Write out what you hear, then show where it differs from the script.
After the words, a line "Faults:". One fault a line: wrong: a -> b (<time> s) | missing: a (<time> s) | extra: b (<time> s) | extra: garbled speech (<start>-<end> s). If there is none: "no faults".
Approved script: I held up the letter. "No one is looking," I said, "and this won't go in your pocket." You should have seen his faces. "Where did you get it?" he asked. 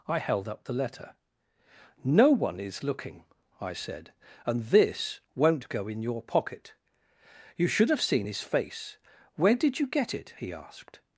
I held up the letter. "No one is looking," I said, "and this won't go in your pocket." You should have seen his face. "Where did you get it?" he asked.
Faults:
wrong: faces -> face (8.4 s)